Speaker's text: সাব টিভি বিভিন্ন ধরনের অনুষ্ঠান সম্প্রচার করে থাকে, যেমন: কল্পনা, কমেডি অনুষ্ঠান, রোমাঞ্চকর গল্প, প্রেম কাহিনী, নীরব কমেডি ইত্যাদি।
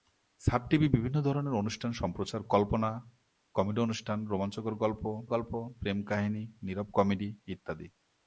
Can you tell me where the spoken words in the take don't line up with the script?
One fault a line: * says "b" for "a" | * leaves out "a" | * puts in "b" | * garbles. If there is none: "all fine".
* leaves out "করে থাকে যেমন"
* puts in "গল্প"